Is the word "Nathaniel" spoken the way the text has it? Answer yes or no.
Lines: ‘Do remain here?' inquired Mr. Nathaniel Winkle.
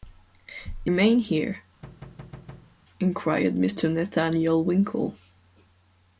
yes